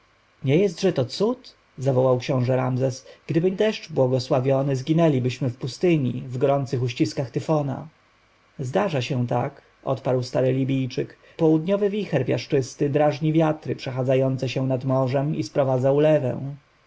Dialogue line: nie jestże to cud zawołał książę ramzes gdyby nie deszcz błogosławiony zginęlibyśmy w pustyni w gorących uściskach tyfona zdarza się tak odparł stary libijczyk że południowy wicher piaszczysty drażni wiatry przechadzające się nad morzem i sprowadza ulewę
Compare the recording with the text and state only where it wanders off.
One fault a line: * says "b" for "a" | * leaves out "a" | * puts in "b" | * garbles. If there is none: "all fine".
* leaves out "nie"
* leaves out "że"